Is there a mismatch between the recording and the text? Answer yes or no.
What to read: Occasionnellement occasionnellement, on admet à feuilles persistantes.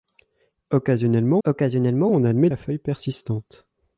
no